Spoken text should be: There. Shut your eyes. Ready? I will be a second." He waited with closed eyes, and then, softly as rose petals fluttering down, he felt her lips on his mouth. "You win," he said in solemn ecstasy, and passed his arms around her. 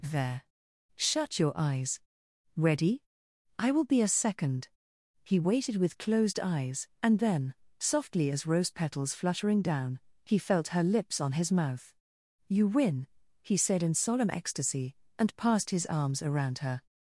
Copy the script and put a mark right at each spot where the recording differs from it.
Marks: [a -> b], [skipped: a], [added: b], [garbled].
There. Shut your eyes. Ready? I will be a second." He waited with closed eyes, and then, softly as rose petals fluttering down, he felt her lips on his mouth. "You win," he said in solemn ecstasy, and passed his arms around her.